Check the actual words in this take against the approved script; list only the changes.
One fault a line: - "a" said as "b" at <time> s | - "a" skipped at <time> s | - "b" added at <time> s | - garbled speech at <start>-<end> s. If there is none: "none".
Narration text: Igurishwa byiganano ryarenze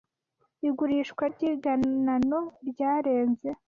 none